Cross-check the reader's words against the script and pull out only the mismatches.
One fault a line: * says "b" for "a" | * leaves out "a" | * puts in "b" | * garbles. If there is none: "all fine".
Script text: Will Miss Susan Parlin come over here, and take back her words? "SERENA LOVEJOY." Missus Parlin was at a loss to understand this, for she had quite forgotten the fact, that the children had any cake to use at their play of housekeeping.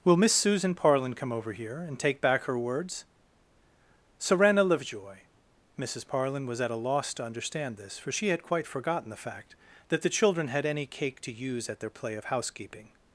all fine